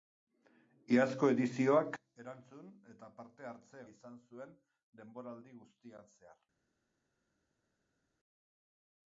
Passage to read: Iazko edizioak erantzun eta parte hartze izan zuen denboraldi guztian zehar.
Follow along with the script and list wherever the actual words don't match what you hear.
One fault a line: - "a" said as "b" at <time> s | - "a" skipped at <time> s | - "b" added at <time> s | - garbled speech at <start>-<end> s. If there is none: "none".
none